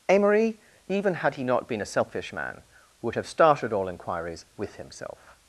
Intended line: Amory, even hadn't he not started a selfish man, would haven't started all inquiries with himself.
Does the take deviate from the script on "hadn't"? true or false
true